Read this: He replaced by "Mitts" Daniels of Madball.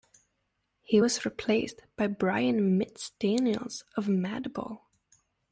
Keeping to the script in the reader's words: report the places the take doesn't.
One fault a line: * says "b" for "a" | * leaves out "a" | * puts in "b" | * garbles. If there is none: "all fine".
* puts in "was"
* puts in "Brian"